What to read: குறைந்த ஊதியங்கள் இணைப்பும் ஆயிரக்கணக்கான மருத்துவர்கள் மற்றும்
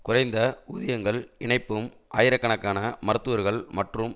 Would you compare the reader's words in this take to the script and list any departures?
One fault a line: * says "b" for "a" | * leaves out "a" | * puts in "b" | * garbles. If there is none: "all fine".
all fine